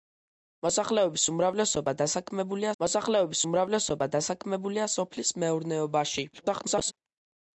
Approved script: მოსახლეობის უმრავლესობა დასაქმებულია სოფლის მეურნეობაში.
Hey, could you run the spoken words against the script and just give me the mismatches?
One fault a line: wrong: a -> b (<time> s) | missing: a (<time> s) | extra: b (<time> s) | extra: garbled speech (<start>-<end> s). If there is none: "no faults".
extra: მოსახლეობის უმრავლესობა დასაქმებულია (2.8 s)
extra: garbled speech (6.3-6.9 s)